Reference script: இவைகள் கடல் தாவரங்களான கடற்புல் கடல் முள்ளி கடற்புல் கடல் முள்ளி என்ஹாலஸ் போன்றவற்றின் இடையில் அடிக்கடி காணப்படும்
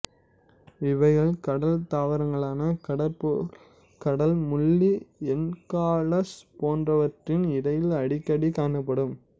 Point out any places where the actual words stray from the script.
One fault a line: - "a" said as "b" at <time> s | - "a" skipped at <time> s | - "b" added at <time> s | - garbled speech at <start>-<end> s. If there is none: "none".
- "கடற்புல் கடல் முள்ளி" skipped at 4.9 s